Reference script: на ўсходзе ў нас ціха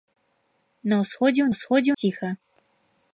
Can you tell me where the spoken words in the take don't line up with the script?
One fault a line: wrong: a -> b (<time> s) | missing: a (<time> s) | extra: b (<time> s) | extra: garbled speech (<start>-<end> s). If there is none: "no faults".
wrong: нас -> ўсходзе (1.5 s)